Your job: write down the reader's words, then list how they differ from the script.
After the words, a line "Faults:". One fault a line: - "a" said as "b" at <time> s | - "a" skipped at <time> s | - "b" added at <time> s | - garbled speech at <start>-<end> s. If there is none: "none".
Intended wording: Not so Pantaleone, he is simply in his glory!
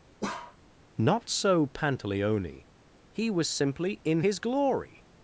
Not so Pantaleone, he was simply in his glory!
Faults:
- "is" said as "was" at 3.3 s